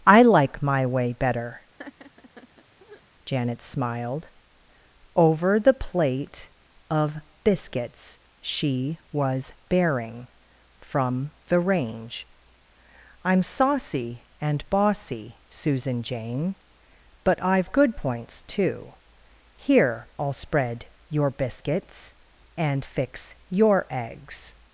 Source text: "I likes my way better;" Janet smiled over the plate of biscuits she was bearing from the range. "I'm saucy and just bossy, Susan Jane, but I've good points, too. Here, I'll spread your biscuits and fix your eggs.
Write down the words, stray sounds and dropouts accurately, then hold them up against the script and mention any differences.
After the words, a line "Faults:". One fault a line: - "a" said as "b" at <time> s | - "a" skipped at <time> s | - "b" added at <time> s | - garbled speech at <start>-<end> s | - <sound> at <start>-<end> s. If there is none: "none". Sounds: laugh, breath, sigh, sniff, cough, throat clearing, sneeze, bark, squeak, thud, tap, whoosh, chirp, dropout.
"I like my way better;" Janet smiled over the plate of biscuits she was bearing from the range. "I'm saucy and bossy, Susan Jane, but I've good points, too. Here, I'll spread your biscuits and fix your eggs.
Faults:
- "likes" said as "like" at 0.2 s
- laugh at 1.8-3.0 s
- "just" skipped at 14.7 s